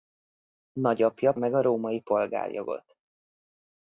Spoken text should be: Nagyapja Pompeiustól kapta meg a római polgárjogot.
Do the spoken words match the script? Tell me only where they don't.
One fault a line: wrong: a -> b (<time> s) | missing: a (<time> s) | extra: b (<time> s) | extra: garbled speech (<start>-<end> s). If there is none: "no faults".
missing: Pompeiustól kapta (1.3 s)